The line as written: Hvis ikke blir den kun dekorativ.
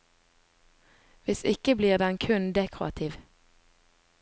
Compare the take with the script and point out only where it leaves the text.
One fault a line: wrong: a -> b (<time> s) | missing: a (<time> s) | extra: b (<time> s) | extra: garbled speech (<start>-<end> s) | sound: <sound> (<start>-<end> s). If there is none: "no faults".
no faults